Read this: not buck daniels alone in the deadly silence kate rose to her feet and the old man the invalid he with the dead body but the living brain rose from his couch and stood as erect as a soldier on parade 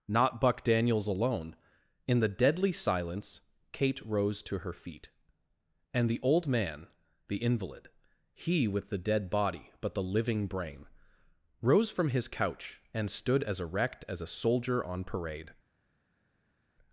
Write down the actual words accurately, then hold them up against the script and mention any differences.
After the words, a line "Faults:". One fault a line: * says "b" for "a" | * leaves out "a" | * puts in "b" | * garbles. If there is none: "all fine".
not buck daniels alone in the deadly silence kate rose to her feet and the old man the invalid he with the dead body but the living brain rose from his couch and stood as erect as a soldier on parade
Faults:
all fine